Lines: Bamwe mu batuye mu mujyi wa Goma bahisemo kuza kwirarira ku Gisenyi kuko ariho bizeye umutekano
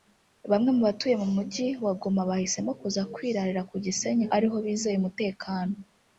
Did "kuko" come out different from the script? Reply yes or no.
yes